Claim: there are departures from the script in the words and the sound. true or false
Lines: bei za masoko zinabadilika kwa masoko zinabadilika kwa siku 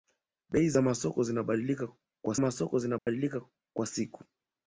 true